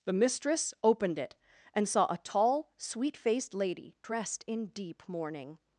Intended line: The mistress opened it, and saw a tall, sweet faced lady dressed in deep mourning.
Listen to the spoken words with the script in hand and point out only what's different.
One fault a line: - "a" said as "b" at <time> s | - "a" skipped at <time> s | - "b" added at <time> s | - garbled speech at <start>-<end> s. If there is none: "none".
none